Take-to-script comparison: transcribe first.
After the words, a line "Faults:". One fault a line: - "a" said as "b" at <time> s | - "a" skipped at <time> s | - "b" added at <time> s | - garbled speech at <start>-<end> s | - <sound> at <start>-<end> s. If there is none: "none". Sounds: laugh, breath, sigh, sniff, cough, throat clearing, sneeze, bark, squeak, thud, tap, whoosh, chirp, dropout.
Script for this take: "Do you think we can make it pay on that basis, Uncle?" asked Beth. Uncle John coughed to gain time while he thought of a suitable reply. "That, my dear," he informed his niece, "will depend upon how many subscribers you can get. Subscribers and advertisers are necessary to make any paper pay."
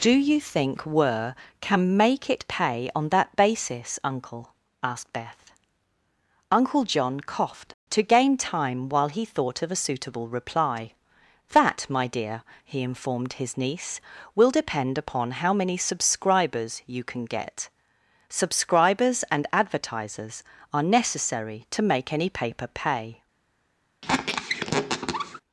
"Do you think were can make it pay on that basis, Uncle?" asked Beth. Uncle John coughed to gain time while he thought of a suitable reply. "That, my dear," he informed his niece, "will depend upon how many subscribers you can get. Subscribers and advertisers are necessary to make any paper pay."
Faults:
- "we" said as "were" at 0.8 s
- squeak at 24.0-25.4 s